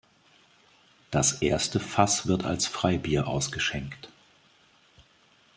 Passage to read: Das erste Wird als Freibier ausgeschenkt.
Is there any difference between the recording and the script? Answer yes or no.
yes